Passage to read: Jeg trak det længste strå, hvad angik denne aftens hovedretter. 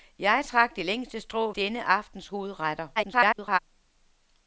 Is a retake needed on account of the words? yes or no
yes